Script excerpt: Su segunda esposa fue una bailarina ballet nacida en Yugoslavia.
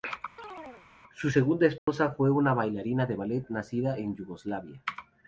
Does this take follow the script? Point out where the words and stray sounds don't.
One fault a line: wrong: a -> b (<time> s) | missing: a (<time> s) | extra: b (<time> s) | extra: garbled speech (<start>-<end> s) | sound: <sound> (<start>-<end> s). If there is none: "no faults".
sound: chirp (0.4-0.9 s)
sound: dropout (1.8-1.9 s)
extra: de (3.1 s)